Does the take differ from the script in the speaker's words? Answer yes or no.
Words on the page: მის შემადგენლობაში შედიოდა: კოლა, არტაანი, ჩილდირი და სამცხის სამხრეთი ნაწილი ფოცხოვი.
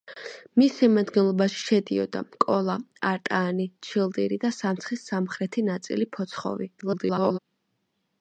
yes